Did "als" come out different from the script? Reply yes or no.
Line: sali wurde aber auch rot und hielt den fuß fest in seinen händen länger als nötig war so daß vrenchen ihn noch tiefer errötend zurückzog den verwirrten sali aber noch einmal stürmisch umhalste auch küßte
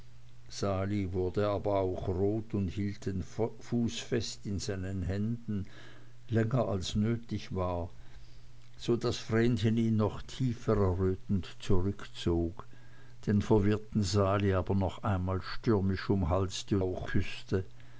no